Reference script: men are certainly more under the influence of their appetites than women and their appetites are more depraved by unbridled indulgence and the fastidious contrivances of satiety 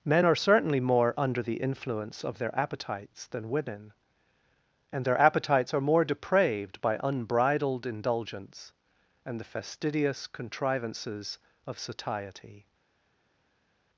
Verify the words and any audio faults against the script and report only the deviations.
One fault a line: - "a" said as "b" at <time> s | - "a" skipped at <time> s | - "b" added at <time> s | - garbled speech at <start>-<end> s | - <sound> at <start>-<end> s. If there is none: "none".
none